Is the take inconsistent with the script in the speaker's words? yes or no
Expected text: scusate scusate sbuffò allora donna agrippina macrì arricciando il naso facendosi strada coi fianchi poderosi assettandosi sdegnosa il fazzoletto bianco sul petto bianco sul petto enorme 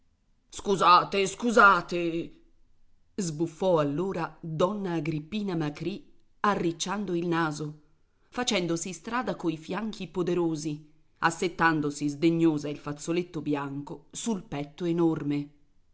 yes